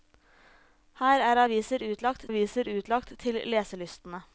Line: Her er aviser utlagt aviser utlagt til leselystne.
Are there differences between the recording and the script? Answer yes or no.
no